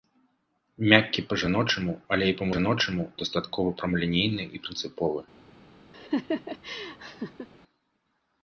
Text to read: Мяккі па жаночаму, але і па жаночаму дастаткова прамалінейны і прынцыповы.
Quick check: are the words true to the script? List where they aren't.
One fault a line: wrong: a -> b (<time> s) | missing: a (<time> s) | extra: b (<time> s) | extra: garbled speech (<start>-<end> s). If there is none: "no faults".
no faults